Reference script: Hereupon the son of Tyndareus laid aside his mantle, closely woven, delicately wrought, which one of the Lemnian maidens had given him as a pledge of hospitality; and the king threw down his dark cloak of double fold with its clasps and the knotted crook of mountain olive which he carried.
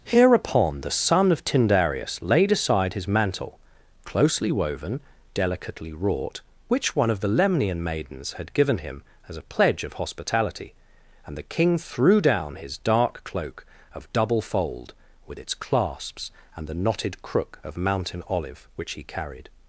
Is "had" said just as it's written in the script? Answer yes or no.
yes